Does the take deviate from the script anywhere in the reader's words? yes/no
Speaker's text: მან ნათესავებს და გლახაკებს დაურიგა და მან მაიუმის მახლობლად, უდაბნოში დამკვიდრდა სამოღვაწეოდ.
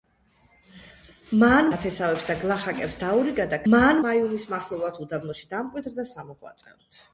no